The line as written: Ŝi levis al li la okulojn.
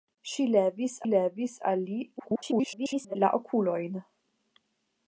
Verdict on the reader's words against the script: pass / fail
fail